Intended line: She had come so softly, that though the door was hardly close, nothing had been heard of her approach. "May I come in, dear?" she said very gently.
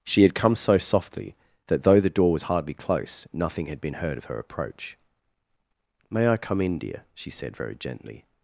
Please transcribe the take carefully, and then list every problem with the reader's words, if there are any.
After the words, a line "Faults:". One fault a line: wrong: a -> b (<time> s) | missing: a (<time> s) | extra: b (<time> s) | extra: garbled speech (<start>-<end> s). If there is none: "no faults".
She had come so softly, that though the door was hardly close, nothing had been heard of her approach. "May I come in, dear?" she said very gently.
Faults:
no faults